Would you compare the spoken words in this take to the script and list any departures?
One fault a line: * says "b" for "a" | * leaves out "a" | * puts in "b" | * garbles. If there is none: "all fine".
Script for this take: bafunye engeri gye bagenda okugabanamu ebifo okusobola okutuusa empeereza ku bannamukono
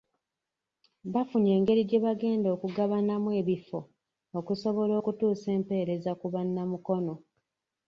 all fine